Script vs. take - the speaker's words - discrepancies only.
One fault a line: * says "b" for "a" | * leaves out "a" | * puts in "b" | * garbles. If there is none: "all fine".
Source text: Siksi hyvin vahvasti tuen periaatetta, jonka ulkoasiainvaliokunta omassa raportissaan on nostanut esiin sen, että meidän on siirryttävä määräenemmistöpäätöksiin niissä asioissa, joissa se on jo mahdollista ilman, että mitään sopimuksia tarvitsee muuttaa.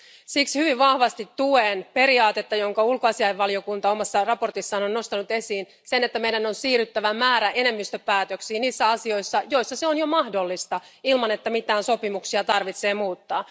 all fine